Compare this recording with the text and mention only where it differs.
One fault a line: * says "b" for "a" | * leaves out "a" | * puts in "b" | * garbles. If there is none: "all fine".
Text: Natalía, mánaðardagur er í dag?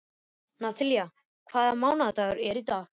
* puts in "hvaða"